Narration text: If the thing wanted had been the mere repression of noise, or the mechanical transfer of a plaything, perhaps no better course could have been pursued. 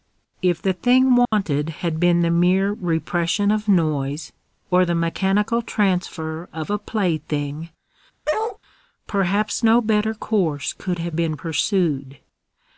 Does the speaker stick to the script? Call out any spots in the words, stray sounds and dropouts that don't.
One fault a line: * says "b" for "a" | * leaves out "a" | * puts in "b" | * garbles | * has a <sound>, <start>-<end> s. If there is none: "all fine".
* has a dropout, 1.2-1.3 s
* has a bark, 8.3-8.6 s